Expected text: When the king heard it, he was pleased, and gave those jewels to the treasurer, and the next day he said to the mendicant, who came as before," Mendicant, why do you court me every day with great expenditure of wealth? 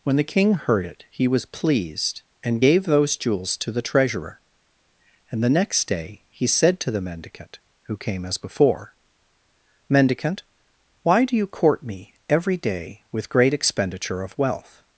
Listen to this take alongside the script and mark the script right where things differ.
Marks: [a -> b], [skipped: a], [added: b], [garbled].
When the king heard it, he was pleased, and gave those jewels to the treasurer, and the next day he said to the mendicant, who came as before," Mendicant, why do you court me every day with great expenditure of wealth?